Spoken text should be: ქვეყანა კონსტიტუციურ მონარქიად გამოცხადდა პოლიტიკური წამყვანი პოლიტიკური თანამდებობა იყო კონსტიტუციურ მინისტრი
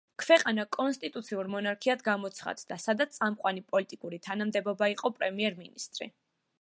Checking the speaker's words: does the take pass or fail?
fail